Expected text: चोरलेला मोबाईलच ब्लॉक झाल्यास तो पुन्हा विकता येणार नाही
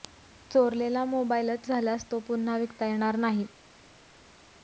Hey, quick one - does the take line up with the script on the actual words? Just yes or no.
no